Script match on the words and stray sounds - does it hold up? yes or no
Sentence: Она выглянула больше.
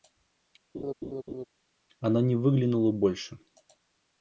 no